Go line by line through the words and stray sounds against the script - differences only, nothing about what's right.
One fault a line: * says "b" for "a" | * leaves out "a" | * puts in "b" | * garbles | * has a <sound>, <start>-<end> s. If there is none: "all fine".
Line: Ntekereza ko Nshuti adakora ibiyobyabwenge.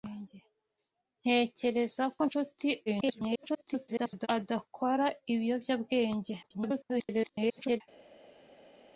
* garbles
* garbles